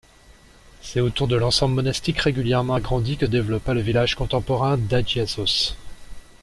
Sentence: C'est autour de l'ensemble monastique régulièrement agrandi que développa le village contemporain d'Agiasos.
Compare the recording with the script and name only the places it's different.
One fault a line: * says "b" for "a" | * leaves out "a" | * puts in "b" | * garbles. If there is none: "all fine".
all fine